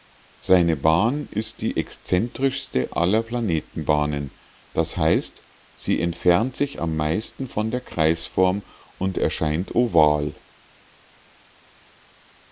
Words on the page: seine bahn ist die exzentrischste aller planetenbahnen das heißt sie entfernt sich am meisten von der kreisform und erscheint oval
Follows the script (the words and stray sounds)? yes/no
yes